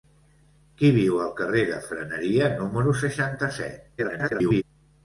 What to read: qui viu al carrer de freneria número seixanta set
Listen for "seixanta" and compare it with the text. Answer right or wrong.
right